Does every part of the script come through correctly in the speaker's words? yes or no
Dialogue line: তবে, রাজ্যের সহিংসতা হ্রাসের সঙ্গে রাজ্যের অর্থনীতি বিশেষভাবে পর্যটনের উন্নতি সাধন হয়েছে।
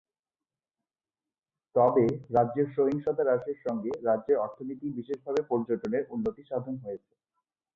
yes